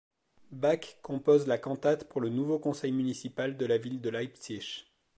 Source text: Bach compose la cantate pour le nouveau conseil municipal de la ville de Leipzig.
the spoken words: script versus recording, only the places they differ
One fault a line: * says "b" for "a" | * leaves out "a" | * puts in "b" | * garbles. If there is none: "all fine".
all fine